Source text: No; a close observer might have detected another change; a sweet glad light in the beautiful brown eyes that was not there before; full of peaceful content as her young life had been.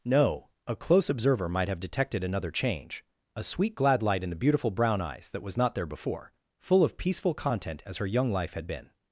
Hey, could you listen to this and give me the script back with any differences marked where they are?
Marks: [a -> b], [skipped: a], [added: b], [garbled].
No; a close observer might have detected another change; a sweet glad light in the beautiful brown eyes that was not there before; full of peaceful content as her young life had been.